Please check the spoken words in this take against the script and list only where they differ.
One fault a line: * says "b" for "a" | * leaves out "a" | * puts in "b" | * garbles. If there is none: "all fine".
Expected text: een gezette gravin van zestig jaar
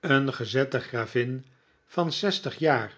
all fine